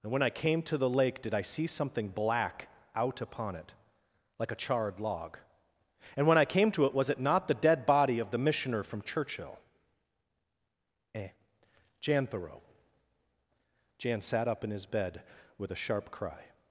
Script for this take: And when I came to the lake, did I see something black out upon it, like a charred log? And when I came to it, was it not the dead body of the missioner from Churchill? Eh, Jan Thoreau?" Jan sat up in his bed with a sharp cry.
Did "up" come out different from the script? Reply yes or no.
no